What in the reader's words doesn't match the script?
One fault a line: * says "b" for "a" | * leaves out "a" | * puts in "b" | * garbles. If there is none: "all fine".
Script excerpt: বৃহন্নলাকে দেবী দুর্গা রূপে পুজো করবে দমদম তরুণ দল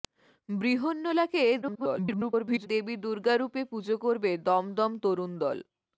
* garbles